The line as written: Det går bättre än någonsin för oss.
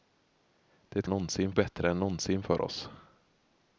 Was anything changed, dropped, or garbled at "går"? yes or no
yes